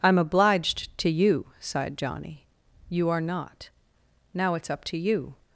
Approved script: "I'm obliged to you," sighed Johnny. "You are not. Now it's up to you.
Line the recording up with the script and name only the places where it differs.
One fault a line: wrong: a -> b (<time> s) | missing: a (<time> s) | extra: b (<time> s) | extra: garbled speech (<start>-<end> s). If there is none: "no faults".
no faults